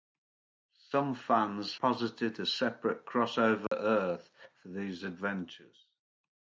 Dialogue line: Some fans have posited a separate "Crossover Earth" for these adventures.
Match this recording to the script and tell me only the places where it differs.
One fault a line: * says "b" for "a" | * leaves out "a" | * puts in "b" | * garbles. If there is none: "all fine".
* leaves out "have"